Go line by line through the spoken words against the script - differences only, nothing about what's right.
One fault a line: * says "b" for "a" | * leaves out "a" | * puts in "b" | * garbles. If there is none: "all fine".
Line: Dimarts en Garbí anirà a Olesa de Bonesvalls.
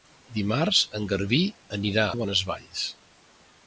* leaves out "a Olesa"